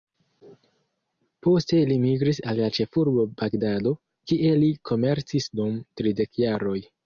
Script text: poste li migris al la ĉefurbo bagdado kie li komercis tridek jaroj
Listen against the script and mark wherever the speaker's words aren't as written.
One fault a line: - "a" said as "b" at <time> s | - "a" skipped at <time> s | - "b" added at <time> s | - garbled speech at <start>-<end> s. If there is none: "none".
- "dum" added at 5.6 s